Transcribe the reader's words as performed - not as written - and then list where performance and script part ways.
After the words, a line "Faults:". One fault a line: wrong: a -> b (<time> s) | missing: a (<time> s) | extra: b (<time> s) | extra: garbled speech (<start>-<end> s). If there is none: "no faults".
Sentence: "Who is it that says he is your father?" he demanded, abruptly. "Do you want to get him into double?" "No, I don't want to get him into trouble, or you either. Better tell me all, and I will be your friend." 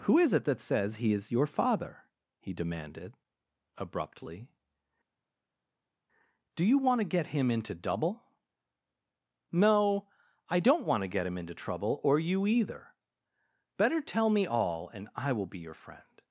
"Who is it that says he is your father?" he demanded, abruptly. "Do you want to get him into double?" "No, I don't want to get him into trouble, or you either. Better tell me all, and I will be your friend."
Faults:
no faults